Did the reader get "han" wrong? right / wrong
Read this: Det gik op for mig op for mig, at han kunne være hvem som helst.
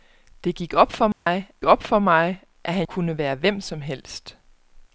right